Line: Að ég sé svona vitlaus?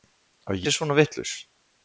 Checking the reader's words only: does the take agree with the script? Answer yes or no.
no